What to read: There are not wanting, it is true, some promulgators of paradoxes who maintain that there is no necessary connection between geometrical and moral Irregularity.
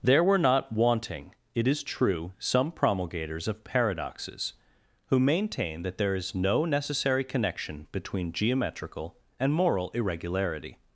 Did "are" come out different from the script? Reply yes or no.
yes